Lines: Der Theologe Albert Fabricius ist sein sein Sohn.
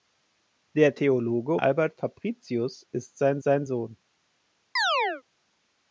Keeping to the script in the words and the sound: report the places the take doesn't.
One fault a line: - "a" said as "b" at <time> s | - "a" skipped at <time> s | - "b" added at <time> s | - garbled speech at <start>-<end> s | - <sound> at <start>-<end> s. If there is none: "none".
- chirp at 4.8-5.2 s